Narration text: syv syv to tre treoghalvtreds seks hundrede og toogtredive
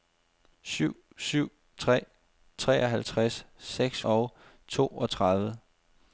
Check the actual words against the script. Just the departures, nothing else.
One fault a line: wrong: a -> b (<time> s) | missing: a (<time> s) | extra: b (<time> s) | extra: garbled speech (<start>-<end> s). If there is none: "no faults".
missing: to (1.5 s)
missing: hundrede (4.0 s)